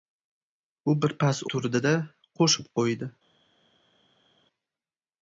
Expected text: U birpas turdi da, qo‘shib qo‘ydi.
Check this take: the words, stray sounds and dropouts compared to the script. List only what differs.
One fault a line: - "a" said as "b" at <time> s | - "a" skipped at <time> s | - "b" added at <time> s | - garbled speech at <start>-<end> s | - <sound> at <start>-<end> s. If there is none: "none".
none